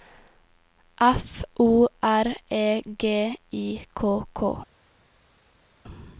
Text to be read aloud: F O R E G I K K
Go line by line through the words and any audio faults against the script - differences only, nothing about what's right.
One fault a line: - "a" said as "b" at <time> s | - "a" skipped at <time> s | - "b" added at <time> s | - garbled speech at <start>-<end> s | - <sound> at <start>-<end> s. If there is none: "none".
none